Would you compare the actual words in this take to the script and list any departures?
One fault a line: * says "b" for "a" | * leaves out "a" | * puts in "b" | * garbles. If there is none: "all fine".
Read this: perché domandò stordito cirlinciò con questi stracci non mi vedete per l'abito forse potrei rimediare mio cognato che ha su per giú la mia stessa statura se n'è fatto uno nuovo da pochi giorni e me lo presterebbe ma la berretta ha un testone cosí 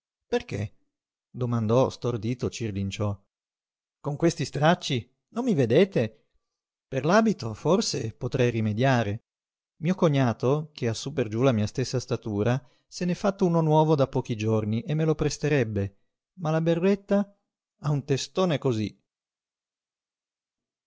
all fine